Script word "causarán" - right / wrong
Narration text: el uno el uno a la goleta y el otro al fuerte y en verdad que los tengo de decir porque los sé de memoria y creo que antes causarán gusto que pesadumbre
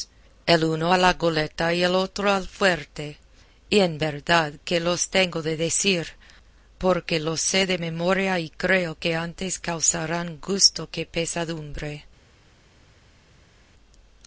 right